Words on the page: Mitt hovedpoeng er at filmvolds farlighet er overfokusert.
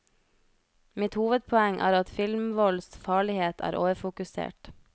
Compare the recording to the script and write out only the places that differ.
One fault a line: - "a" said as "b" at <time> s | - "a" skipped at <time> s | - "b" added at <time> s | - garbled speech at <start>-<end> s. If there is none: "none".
none